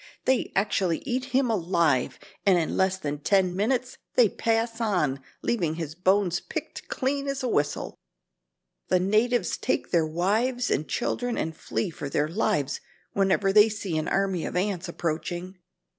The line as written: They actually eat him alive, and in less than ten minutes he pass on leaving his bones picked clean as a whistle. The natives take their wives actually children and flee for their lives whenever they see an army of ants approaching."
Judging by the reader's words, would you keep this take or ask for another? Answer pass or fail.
fail